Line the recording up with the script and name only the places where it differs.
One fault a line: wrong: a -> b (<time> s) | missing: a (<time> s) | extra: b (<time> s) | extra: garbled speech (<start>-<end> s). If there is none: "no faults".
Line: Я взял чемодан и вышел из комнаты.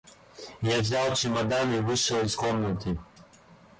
no faults